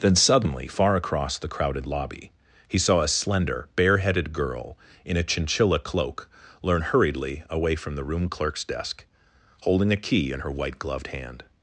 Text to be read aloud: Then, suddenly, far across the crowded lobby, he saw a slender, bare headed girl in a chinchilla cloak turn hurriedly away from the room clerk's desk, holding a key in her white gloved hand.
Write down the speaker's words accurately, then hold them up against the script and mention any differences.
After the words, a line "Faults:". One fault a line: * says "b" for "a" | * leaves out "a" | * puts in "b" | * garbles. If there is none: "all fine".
Then, suddenly, far across the crowded lobby, he saw a slender, bare headed girl in a chinchilla cloak learn hurriedly away from the room clerk's desk, holding a key in her white gloved hand.
Faults:
* says "learn" for "turn"